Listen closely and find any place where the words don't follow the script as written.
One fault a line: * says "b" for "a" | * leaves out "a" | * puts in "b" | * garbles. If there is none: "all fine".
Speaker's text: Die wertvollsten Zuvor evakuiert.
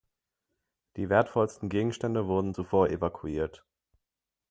* puts in "Gegenstände wurden"